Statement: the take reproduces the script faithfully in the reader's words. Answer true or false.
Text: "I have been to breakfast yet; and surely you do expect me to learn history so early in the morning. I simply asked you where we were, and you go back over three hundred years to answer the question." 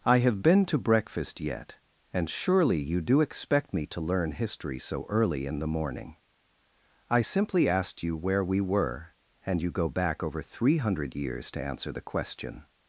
true